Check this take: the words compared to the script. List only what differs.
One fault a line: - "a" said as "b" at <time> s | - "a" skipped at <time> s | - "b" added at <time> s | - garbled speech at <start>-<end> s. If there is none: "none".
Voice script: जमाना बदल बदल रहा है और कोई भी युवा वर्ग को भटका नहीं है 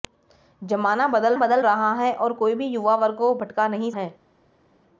none